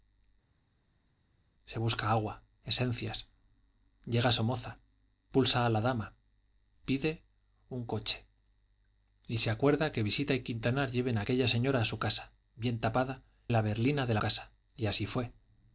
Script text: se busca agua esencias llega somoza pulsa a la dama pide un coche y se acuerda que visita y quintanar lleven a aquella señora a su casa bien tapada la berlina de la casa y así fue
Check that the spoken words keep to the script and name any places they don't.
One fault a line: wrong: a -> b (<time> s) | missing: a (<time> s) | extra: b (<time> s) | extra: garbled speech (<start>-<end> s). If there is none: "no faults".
no faults